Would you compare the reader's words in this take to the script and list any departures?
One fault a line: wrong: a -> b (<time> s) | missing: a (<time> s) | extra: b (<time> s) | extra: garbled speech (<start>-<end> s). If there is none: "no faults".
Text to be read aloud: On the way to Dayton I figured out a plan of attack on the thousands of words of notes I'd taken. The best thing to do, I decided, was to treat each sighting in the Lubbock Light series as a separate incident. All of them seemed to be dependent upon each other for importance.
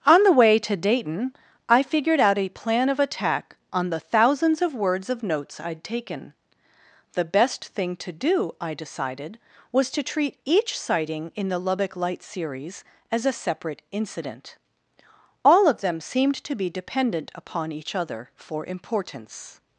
no faults